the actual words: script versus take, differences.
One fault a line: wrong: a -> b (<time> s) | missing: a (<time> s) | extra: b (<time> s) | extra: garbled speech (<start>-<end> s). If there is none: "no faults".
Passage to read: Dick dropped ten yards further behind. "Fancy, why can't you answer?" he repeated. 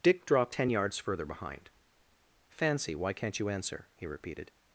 no faults